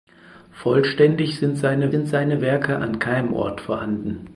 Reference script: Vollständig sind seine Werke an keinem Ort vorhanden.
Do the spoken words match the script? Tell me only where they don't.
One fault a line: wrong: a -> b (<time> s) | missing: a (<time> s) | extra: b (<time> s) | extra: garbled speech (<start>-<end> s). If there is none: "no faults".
extra: sind seine (1.9 s)